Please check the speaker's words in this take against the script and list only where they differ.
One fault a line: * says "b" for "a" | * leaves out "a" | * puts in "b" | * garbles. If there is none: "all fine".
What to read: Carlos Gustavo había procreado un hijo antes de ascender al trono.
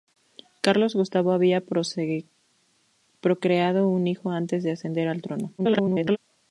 * garbles